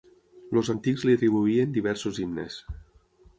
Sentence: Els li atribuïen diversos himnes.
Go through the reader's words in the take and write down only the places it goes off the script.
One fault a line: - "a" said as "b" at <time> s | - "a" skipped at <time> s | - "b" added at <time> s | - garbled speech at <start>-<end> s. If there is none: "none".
- "antics" added at 0.7 s